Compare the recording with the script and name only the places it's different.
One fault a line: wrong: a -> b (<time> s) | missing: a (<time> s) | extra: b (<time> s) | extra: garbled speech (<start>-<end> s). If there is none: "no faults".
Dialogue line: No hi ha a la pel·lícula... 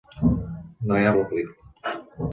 no faults